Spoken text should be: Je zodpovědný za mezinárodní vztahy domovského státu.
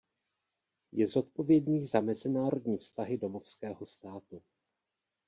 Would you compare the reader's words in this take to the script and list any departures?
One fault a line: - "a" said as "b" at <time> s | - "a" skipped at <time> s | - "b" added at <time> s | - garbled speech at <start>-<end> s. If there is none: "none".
none